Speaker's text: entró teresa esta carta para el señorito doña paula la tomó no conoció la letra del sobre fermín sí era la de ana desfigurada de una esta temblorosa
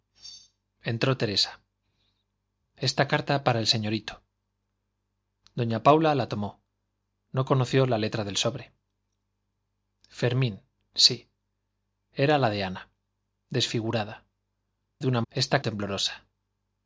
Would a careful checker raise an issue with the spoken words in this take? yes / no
no